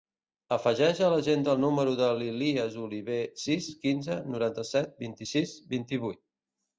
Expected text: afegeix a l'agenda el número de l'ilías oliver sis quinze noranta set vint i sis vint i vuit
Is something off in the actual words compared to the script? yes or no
no